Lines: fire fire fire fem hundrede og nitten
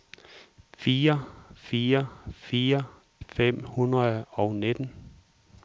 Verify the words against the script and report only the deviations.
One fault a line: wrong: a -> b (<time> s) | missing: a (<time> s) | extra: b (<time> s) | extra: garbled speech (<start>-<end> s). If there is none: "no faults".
no faults